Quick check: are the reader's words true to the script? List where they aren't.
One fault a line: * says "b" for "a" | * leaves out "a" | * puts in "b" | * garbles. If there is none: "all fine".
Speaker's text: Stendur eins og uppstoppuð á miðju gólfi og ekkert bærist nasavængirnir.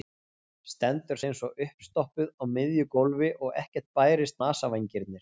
all fine